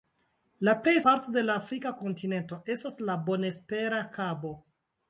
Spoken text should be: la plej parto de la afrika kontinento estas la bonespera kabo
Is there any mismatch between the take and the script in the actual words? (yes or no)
no